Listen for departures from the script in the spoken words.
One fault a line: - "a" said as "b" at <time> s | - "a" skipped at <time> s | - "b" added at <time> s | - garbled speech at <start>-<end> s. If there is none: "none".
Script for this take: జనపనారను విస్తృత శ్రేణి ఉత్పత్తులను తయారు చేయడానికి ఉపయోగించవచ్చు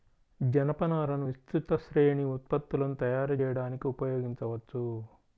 none